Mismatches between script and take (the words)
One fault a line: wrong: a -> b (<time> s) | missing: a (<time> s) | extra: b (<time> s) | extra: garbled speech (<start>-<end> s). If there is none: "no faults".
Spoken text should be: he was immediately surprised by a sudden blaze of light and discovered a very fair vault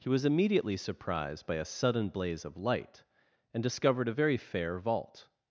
no faults